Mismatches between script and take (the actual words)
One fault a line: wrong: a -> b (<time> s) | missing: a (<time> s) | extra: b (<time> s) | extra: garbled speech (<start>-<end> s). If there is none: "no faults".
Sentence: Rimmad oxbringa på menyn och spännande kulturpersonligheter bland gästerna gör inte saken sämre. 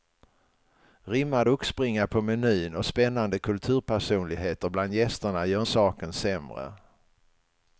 missing: inte (5.6 s)